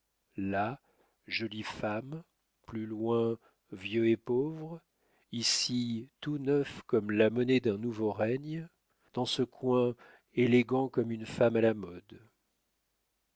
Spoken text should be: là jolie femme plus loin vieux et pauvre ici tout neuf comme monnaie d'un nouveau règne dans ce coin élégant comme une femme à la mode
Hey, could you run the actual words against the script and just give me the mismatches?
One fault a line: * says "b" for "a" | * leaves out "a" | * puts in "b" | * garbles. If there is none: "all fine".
* puts in "la"